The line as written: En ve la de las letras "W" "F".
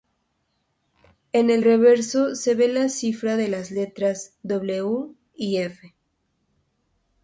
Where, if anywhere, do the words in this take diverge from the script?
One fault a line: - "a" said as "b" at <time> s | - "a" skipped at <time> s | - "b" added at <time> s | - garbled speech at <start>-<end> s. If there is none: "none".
- "el reverso se" added at 1.5 s
- "cifra" added at 2.9 s
- "y" added at 5.3 s